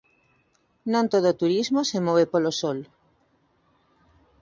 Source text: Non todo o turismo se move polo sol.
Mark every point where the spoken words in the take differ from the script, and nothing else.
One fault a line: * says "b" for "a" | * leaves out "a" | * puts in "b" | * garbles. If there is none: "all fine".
all fine